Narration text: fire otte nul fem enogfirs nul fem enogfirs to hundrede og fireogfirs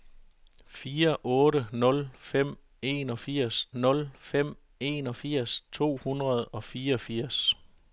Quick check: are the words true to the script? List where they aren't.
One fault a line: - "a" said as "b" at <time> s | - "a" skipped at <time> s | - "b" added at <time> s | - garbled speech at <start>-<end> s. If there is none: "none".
none